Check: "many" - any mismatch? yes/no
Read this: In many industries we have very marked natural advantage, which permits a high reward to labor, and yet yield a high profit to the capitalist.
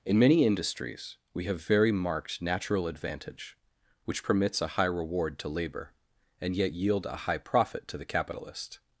no